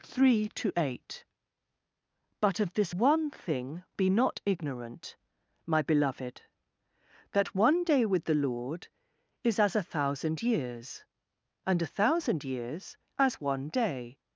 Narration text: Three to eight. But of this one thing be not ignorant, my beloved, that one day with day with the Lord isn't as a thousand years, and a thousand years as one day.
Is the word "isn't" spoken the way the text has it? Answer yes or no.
no